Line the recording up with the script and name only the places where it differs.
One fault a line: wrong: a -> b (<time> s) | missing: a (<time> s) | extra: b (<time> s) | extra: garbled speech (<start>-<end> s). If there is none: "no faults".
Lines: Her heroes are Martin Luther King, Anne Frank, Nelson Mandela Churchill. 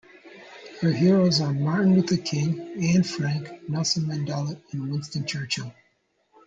extra: and Winston (4.7 s)